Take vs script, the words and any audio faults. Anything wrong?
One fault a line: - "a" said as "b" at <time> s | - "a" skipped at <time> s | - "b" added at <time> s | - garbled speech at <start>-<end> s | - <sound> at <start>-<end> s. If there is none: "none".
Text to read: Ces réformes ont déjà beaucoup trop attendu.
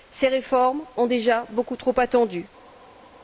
none